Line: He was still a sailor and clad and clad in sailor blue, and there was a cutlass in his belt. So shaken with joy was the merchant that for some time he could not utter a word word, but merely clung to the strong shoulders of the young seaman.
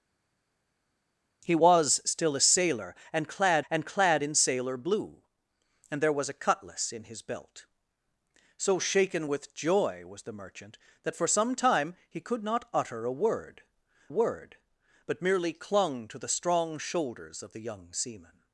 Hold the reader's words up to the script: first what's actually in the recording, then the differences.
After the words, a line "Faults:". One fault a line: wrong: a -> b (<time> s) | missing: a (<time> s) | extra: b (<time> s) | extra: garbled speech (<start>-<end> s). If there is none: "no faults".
He was still a sailor and clad and clad in sailor blue, and there was a cutlass in his belt. So shaken with joy was the merchant that for some time he could not utter a word word, but merely clung to the strong shoulders of the young seaman.
Faults:
no faults